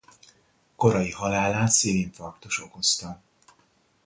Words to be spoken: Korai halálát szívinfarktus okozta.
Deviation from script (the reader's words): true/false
false